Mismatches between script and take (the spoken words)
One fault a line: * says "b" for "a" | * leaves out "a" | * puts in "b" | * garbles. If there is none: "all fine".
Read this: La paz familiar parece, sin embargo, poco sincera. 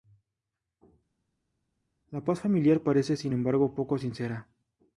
all fine